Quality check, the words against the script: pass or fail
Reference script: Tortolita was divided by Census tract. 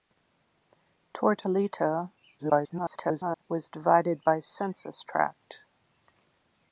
fail